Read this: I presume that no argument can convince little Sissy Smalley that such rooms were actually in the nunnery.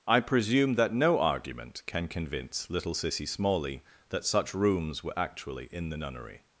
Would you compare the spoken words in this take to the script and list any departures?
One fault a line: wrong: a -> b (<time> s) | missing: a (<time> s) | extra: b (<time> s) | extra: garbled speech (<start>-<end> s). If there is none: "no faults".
no faults